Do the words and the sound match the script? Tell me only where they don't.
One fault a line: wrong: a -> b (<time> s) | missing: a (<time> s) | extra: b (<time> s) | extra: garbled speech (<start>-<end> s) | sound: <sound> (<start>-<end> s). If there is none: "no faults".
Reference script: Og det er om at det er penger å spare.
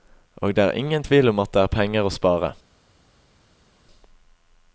extra: ingen tvil (0.7 s)